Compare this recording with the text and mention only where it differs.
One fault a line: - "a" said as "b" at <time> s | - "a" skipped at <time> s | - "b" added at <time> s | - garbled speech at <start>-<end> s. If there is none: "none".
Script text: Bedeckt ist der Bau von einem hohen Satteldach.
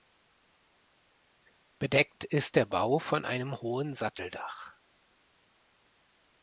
none